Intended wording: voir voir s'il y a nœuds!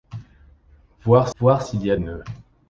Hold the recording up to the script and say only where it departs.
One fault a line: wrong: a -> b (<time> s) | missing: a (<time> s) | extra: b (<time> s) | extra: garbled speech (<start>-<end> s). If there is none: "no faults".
no faults